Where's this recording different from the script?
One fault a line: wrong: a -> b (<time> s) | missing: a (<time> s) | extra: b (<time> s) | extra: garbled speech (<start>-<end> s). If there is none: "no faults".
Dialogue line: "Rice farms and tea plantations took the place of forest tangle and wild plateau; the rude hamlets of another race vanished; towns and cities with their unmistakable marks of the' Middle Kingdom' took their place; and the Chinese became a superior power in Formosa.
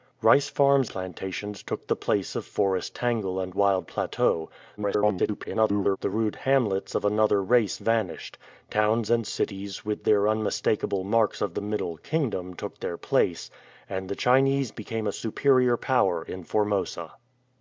missing: and tea (0.9 s)
extra: garbled speech (4.8-6.0 s)